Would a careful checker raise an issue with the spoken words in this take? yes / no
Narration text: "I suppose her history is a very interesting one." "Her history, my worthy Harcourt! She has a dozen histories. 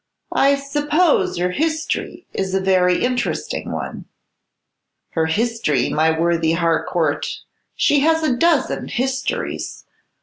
no